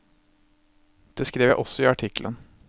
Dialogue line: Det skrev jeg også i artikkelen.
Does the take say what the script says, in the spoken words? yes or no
yes